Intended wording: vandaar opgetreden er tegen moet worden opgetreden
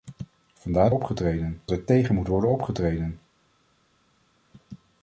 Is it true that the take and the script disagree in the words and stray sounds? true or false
false